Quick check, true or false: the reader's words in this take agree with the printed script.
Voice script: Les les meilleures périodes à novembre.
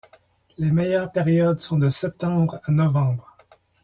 false